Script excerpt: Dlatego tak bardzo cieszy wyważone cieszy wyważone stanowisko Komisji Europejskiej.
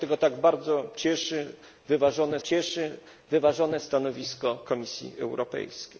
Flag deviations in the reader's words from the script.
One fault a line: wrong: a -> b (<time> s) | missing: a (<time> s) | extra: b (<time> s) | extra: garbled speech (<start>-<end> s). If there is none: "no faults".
no faults